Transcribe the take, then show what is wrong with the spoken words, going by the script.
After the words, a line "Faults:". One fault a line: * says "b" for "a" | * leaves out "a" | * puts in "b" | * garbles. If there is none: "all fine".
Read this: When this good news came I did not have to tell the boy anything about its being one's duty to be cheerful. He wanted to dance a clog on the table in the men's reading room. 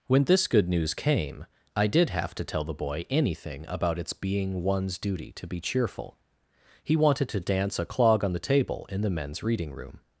When this good news came I did have to tell the boy anything about its being one's duty to be cheerful. He wanted to dance a clog on the table in the men's reading room.
Faults:
* leaves out "not"